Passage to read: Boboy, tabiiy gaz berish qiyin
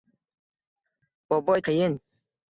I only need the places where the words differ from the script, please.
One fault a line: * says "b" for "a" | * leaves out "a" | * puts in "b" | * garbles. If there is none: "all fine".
* leaves out "tabiiy gaz berish"